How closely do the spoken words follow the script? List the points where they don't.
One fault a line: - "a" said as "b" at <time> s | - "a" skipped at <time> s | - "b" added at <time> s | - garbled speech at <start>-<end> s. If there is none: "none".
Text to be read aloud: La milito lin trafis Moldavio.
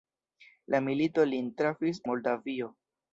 none